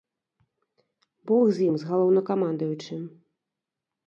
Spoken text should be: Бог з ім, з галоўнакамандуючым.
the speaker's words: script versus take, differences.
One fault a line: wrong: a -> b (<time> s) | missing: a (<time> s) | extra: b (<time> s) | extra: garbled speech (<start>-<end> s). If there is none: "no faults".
no faults